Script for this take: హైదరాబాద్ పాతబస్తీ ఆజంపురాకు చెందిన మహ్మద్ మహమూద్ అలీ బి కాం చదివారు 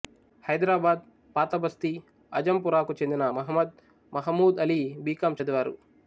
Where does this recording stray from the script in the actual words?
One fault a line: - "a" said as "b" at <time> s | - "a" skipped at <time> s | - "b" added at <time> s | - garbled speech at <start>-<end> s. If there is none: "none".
none